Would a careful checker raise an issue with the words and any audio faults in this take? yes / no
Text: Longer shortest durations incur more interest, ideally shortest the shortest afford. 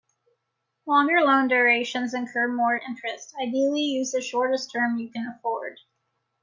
yes